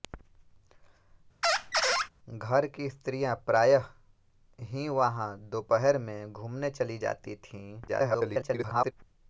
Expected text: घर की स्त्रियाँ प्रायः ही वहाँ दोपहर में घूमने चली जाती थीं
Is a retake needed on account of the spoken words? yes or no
yes